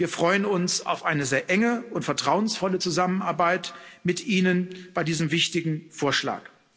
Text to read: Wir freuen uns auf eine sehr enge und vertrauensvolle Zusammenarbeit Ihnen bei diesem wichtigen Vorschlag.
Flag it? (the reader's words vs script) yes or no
yes